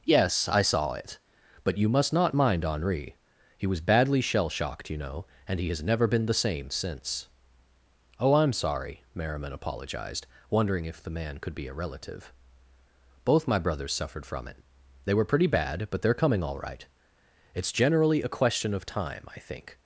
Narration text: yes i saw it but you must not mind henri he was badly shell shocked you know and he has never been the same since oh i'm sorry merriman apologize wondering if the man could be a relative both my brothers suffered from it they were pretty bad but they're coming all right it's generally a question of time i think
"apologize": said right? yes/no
no